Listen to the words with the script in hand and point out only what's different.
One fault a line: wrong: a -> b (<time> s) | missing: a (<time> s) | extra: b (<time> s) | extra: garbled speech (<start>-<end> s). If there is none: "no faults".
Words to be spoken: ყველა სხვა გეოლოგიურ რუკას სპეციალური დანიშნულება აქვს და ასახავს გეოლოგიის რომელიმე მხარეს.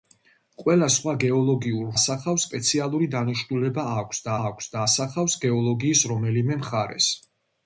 wrong: რუკას -> ასახავს (2.0 s)
extra: აქვს და (4.5 s)